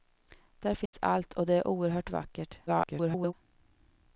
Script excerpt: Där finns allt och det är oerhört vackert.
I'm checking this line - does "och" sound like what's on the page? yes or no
yes